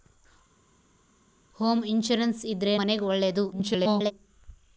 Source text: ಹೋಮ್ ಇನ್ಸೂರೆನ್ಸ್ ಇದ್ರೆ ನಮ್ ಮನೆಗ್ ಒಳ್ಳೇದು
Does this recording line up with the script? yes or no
no